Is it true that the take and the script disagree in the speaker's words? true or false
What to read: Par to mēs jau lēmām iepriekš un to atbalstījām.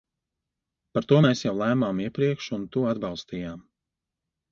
false